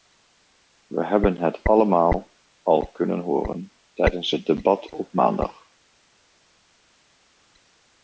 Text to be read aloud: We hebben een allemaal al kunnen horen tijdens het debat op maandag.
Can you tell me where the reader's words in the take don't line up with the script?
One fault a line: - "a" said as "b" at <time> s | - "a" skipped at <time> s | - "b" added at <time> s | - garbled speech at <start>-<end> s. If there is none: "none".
- "een" said as "het" at 1.4 s